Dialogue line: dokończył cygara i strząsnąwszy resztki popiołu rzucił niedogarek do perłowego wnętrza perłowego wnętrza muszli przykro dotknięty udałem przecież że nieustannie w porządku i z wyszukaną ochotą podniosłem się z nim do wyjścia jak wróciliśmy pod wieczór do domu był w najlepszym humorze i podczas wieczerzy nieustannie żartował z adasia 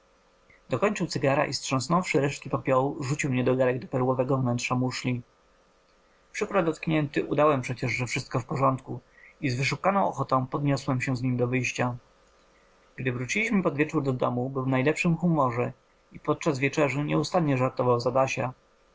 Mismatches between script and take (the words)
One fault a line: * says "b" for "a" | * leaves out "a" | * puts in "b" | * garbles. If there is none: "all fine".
* leaves out "perłowego wnętrza"
* says "wszystko" for "nieustannie"
* says "gdy" for "jak"